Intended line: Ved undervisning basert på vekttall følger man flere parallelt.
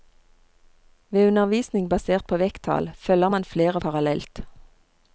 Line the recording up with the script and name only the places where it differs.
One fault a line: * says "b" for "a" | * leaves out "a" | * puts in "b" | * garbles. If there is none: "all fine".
all fine